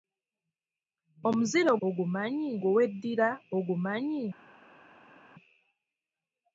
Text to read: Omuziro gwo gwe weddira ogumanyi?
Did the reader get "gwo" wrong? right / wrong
wrong